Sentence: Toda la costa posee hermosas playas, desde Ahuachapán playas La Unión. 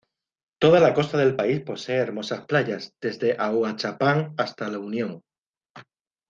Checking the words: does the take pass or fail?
fail